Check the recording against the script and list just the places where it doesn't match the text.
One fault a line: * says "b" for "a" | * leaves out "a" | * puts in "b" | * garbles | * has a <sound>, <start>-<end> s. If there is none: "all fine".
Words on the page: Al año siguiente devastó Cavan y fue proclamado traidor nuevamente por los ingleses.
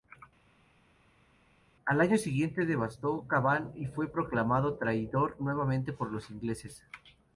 all fine